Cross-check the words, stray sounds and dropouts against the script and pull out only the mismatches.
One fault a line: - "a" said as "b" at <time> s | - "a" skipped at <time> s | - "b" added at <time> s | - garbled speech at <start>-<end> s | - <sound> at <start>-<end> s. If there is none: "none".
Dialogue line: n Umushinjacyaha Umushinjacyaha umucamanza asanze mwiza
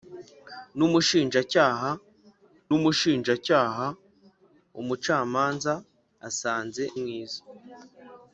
none